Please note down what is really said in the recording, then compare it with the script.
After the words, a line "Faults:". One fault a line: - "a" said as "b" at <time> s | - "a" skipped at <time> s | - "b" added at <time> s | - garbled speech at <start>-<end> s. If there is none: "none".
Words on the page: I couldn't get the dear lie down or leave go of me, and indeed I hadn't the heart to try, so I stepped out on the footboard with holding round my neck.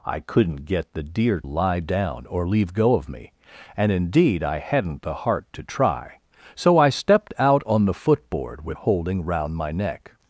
I couldn't get the dear lie down or leave go of me, and indeed I hadn't the heart to try, so I stepped out on the footboard with holding round my neck.
Faults:
none